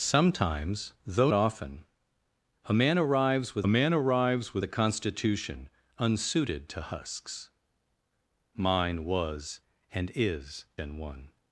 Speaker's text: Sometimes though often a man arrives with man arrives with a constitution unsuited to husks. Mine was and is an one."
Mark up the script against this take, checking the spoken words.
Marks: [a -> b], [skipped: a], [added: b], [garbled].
Sometimes though often a man arrives with man arrives with a constitution unsuited to husks. Mine was and is an one."